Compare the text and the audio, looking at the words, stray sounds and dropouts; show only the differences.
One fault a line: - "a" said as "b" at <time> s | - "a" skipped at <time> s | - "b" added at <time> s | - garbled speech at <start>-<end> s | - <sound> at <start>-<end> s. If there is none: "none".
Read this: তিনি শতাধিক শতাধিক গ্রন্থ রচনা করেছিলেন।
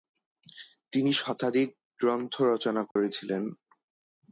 - "শতাধিক" skipped at 1.7 s
- dropout at 2.9-3.0 s